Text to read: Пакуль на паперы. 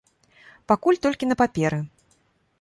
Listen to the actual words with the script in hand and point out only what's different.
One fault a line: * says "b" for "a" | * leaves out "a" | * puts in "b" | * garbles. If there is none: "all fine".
* puts in "толькі"